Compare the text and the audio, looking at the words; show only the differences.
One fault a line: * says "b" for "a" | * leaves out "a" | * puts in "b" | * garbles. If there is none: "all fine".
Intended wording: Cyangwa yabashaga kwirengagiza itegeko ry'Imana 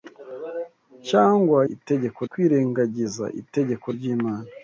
* says "itegeko" for "yabashaga"